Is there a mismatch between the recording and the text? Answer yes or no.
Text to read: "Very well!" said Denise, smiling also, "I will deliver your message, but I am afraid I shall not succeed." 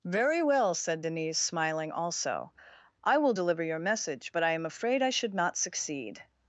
yes